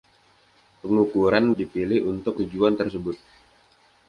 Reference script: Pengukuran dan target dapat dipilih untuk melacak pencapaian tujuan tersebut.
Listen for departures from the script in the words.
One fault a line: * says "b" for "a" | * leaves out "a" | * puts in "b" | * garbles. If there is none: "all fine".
* leaves out "dan target dapat"
* leaves out "melacak pencapaian"